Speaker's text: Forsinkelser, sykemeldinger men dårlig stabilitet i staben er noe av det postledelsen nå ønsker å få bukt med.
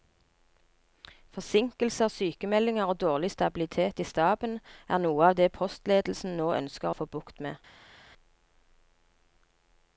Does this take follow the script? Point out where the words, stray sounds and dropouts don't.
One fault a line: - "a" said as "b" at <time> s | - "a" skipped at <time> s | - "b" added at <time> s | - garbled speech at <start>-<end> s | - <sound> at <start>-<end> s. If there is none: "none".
- "men" said as "og" at 2.9 s